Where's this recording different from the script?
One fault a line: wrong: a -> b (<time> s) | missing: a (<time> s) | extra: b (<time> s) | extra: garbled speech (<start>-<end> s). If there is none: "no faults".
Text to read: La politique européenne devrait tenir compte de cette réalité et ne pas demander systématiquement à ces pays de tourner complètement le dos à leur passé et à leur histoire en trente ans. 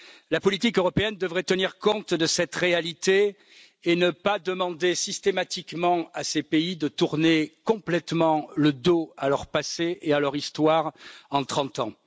no faults